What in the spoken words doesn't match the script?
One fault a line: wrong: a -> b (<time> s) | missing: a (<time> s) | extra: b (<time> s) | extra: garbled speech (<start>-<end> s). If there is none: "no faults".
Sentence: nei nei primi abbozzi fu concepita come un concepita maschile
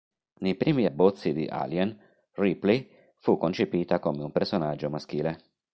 missing: nei (0.6 s)
extra: di alien ripley (1.3 s)
wrong: concepita -> personaggio (4.3 s)